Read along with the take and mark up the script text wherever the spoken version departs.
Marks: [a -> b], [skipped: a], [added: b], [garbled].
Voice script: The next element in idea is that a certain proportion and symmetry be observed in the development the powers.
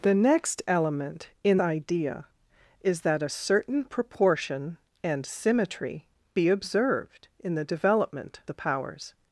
The next element in idea is that a certain proportion and symmetry be observed in the development the powers.